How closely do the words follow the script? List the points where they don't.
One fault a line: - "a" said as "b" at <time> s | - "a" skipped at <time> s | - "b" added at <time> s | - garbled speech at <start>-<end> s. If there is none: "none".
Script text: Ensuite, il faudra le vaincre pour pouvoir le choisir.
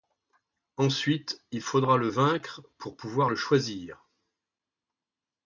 none